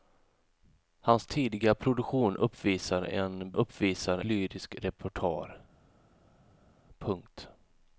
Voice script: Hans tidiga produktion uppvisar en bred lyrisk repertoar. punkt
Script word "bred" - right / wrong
wrong